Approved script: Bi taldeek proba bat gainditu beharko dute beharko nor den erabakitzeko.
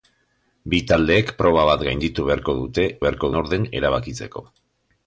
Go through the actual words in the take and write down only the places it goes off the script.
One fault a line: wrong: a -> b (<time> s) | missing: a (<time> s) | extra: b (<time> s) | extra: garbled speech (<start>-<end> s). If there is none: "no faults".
no faults